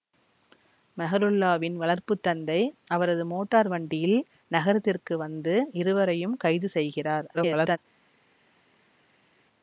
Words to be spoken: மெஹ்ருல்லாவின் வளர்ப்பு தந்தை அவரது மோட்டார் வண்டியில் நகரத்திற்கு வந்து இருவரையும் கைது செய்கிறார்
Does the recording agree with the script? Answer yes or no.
no